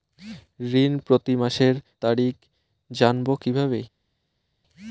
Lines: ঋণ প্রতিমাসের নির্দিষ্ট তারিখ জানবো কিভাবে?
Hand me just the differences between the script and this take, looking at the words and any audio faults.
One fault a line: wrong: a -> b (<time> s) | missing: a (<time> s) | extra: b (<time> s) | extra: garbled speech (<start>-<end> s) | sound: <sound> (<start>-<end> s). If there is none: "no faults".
missing: নির্দিষ্ট (1.8 s)